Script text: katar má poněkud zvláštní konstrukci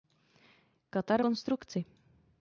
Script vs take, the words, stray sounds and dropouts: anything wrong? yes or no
yes